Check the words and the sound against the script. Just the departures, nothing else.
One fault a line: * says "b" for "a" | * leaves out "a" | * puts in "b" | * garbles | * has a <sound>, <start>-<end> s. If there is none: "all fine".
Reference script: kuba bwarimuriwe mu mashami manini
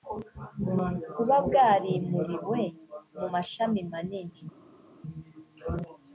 all fine